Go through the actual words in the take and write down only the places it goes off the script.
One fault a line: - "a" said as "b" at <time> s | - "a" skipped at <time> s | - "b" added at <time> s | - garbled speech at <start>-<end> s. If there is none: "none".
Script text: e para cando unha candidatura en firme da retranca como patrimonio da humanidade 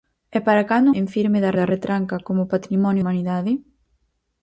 - "unha candidatura" skipped at 0.9 s
- "da" added at 1.6 s
- "da" skipped at 3.0 s